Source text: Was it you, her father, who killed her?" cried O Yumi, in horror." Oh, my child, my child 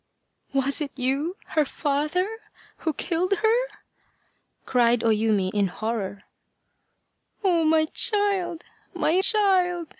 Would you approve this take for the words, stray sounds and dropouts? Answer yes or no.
yes